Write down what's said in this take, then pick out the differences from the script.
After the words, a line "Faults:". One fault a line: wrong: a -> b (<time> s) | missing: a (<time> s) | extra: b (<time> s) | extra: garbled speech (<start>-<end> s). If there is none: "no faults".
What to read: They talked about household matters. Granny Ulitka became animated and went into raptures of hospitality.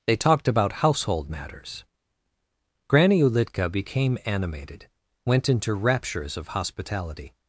They talked about household matters. Granny Ulitka became animated went into raptures of hospitality.
Faults:
missing: and (4.9 s)